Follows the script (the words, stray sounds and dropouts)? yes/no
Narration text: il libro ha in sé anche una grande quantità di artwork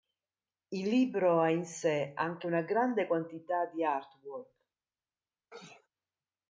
no